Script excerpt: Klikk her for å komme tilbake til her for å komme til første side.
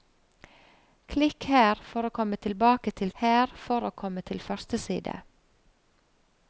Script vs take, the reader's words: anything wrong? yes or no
no